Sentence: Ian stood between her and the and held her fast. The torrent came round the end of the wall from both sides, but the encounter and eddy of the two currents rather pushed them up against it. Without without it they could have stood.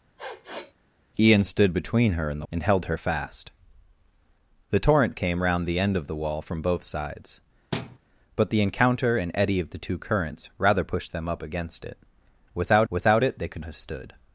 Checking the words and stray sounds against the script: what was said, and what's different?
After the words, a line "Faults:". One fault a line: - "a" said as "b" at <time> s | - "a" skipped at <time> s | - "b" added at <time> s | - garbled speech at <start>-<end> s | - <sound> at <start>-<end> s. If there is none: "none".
Ian stood between her and the and held her fast. The torrent came round the end of the wall from both sides, but the encounter and eddy of the two currents rather pushed them up against it. Without without it they could have stood.
Faults:
- sniff at 0.2-0.7 s
- thud at 7.7-8.0 s